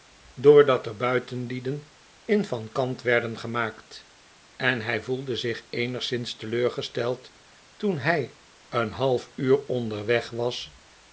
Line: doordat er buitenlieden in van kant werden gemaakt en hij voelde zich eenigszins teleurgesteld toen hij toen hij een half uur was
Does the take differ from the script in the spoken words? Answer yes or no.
yes